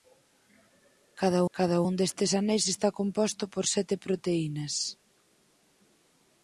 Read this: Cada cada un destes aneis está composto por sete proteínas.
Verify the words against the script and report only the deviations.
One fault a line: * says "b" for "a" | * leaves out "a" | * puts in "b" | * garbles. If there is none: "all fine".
all fine